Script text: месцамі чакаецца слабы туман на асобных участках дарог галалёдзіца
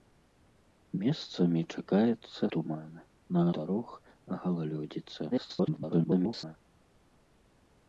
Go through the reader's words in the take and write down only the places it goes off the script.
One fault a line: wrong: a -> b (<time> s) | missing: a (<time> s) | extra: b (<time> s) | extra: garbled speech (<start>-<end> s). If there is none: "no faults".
missing: слабы (2.4 s)
missing: асобных участках (3.4 s)
extra: garbled speech (5.3-6.5 s)